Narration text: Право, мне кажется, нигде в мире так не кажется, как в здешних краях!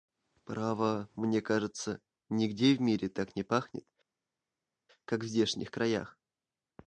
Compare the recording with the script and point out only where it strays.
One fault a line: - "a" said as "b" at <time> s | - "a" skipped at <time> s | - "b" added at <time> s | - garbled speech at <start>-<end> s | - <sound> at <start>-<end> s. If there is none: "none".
- "кажется" said as "пахнет" at 3.4 s